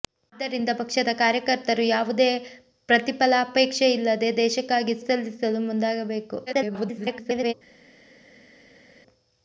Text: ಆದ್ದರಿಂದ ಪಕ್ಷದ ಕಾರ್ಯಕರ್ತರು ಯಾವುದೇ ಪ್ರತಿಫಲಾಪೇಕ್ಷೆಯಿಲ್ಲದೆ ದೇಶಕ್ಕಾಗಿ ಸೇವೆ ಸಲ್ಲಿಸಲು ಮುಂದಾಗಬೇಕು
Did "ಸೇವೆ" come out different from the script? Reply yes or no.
yes